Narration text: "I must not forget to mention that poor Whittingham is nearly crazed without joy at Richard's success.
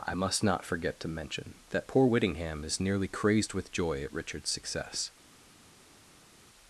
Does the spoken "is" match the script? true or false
true